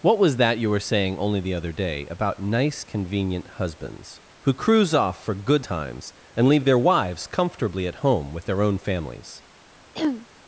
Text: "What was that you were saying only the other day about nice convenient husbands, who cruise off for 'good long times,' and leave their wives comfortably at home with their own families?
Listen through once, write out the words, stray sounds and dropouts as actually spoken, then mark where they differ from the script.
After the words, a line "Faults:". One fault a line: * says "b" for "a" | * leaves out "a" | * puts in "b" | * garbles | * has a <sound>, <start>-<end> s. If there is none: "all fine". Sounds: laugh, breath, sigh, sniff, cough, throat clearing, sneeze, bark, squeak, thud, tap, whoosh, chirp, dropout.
"What was that you were saying only the other day about nice convenient husbands, who cruise off for 'good times,' and leave their wives comfortably at home with their own families?
Faults:
* leaves out "long"
* has a throat clearing, 9.9-10.3 s